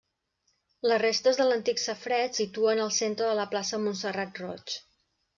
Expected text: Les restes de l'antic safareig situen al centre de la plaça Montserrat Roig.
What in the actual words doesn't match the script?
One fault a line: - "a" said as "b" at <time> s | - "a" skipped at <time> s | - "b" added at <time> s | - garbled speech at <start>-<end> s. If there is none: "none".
none